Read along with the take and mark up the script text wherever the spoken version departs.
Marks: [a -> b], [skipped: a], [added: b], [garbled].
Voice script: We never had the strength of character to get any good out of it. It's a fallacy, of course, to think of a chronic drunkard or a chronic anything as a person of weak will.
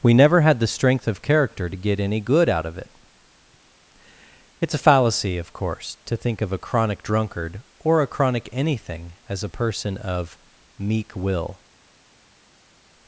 We never had the strength of character to get any good out of it. It's a fallacy, of course, to think of a chronic drunkard or a chronic anything as a person of [weak -> meek] will.